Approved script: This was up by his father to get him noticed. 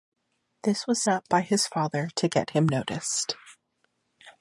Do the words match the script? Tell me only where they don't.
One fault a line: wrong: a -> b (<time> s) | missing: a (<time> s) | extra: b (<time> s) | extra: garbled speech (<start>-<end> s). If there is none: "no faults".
no faults